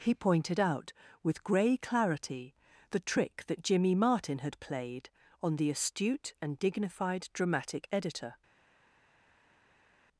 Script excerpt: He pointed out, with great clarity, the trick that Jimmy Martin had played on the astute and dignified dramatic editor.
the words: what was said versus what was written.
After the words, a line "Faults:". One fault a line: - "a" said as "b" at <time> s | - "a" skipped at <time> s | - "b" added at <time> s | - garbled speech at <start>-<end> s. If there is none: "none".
He pointed out, with grey clarity, the trick that Jimmy Martin had played on the astute and dignified dramatic editor.
Faults:
- "great" said as "grey" at 1.4 s